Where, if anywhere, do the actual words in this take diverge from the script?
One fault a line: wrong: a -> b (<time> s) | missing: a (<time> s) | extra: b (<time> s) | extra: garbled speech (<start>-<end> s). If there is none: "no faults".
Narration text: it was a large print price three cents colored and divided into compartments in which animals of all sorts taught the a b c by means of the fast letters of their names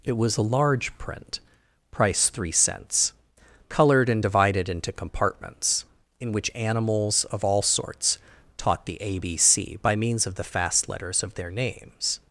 no faults